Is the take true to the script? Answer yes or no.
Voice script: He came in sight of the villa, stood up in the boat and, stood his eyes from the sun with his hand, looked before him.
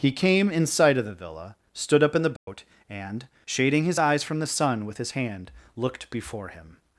no